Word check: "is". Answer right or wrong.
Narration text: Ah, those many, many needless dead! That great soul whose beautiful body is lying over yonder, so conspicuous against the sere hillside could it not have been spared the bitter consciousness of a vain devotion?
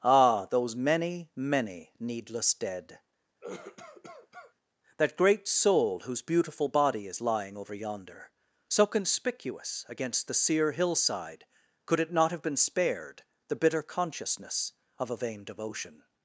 right